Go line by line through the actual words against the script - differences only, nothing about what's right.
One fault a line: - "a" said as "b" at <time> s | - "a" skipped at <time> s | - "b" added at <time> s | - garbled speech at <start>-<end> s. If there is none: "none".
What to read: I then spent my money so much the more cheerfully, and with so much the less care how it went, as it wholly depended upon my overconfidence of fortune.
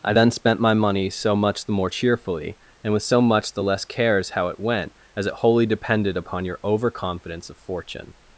- "care" said as "cares" at 3.8 s
- "my" said as "your" at 6.4 s